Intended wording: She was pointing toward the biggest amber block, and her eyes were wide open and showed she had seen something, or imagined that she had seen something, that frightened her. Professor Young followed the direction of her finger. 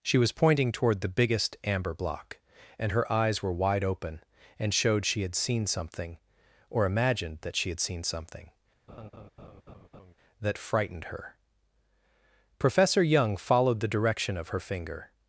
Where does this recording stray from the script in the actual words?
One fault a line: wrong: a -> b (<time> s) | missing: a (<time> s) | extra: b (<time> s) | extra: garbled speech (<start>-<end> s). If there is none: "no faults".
no faults